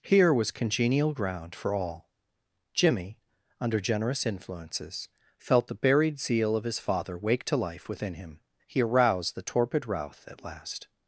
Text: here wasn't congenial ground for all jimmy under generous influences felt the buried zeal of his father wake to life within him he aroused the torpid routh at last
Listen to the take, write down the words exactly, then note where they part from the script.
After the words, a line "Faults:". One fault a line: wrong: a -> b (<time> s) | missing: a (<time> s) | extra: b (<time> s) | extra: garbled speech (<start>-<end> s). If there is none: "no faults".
here was congenial ground for all jimmy under generous influences felt the buried zeal of his father wake to life within him he aroused the torpid routh at last
Faults:
wrong: wasn't -> was (0.3 s)